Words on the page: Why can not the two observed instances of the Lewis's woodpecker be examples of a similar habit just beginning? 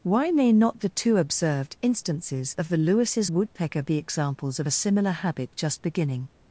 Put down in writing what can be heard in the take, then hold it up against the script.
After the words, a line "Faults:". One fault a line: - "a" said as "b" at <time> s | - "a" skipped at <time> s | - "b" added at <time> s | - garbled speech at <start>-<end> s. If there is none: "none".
Why may not the two observed instances of the Lewis's woodpecker be examples of a similar habit just beginning?
Faults:
- "can" said as "may" at 0.3 s